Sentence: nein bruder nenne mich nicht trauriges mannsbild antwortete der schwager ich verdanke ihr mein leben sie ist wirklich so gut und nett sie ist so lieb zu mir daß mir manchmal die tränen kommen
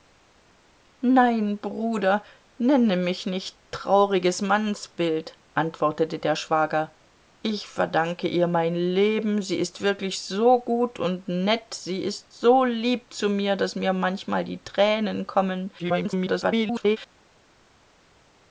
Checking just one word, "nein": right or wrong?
right